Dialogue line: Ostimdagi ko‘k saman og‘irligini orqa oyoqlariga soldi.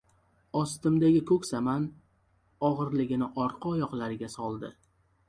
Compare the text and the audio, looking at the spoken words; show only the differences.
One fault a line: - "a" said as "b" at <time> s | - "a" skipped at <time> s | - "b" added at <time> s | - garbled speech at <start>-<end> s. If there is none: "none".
none